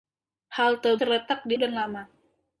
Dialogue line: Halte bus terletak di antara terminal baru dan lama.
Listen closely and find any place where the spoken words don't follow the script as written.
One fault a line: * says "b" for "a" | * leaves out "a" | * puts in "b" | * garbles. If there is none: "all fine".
* leaves out "bus"
* leaves out "antara terminal baru"